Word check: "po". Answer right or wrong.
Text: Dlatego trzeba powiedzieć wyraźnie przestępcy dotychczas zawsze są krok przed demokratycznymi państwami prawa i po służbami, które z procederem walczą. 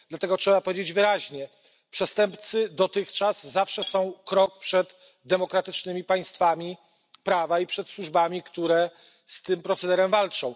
wrong